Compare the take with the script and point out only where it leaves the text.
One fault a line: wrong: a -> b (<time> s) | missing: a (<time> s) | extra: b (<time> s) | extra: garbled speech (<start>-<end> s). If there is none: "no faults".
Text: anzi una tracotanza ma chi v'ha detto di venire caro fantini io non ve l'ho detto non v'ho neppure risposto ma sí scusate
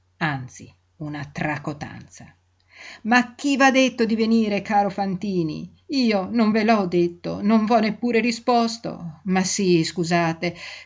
no faults